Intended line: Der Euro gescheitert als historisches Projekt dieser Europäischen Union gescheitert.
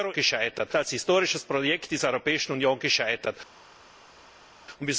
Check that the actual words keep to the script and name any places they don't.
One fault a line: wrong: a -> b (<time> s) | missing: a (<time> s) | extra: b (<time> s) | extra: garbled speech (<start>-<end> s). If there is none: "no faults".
no faults